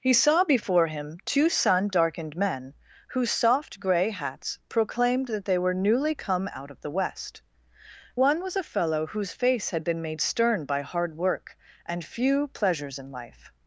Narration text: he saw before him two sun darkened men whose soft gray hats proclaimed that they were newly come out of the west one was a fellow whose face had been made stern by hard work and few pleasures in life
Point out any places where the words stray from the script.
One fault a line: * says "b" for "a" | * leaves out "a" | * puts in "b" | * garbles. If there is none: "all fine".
all fine